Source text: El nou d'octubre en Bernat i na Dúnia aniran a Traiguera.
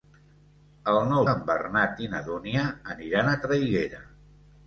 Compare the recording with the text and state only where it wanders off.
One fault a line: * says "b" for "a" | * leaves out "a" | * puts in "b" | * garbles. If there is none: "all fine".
* leaves out "d'octubre"